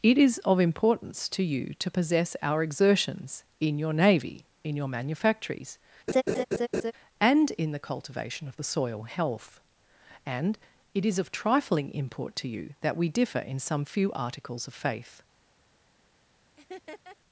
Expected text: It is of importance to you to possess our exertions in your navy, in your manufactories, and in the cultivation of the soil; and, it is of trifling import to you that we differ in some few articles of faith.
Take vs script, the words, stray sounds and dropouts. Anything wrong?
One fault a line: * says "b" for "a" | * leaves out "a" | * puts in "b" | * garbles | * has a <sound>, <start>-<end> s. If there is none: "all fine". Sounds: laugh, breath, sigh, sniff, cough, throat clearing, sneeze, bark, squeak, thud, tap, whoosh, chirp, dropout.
* has a laugh, 6.1-6.9 s
* puts in "health"
* has a laugh, 16.6-17.2 s